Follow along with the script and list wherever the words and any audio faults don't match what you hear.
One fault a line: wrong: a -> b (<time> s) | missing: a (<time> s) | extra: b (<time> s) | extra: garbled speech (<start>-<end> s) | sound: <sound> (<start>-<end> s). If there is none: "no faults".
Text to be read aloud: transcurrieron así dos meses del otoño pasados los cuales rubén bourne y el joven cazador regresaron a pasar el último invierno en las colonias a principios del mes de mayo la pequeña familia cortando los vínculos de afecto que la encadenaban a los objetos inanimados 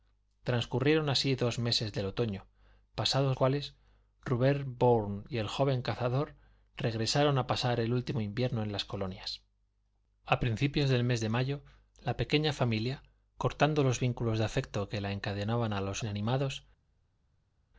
missing: los (3.4 s)
missing: objetos (16.0 s)